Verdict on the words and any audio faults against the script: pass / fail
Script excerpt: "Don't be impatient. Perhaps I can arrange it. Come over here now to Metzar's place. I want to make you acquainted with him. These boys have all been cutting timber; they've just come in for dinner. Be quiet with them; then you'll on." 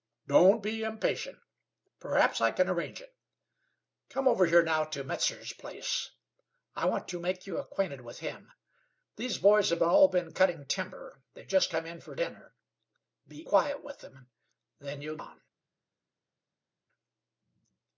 pass